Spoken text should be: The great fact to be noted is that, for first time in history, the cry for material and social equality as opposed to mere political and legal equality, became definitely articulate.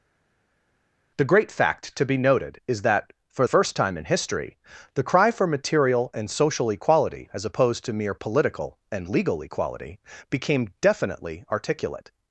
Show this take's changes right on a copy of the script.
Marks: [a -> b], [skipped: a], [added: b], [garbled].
The great fact to be noted is that, for first time in history, the cry for material and social equality as opposed to mere political and legal equality, became definitely articulate.